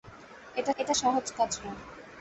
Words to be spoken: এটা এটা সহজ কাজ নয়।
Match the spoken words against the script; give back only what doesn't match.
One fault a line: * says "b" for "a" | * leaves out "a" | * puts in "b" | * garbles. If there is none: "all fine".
all fine